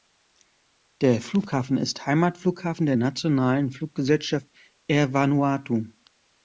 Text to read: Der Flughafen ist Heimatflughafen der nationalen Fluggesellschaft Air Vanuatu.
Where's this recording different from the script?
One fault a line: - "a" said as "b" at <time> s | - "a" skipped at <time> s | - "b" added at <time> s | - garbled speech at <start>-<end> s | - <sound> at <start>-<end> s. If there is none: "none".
none